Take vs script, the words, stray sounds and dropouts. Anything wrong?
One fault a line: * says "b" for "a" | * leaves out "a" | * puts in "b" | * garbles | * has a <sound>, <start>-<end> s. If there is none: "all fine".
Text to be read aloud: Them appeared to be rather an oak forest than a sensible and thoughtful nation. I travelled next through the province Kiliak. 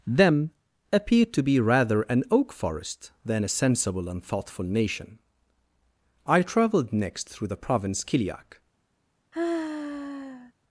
* has a sigh, 9.3-10.5 s